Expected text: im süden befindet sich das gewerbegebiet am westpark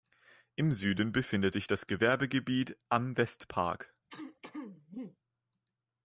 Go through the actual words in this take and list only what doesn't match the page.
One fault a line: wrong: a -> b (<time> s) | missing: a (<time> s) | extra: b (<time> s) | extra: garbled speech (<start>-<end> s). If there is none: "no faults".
no faults